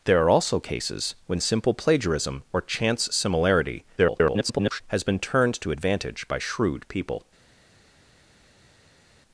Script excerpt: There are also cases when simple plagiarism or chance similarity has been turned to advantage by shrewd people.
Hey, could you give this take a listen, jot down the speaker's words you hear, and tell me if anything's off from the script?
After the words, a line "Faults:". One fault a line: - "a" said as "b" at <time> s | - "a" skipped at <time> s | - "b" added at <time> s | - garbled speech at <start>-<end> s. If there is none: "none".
There are also cases when simple plagiarism or chance similarity [garbled] has been turned to advantage by shrewd people.
Faults:
- garbled speech at 4.0-4.8 s